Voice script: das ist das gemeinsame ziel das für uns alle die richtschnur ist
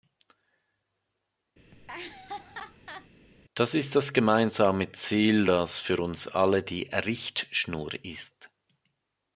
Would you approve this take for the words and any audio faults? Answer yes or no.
no